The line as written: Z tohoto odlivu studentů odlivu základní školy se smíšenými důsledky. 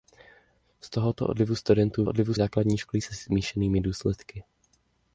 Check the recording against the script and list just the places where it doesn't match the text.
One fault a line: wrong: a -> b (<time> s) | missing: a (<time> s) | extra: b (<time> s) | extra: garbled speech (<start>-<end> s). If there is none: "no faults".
no faults